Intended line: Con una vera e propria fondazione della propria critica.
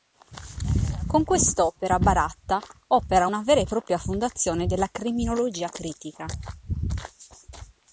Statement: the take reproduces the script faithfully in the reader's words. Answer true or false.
false